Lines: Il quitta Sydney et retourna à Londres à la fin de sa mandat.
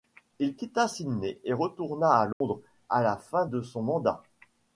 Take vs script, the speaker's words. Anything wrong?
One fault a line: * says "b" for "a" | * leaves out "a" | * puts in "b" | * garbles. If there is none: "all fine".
* says "son" for "sa"